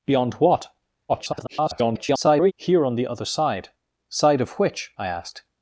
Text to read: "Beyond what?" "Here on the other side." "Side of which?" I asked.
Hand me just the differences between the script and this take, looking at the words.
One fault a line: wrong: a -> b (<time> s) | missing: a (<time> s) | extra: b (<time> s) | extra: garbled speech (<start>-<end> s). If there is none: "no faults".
extra: garbled speech (1.1-2.5 s)